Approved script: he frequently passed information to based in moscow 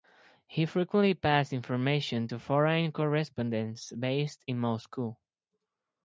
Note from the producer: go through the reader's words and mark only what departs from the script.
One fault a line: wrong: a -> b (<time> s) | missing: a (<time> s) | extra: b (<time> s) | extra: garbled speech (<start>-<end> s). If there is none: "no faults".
extra: foreign correspondents (2.4 s)